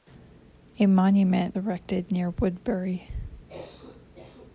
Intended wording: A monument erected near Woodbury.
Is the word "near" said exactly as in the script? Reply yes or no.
yes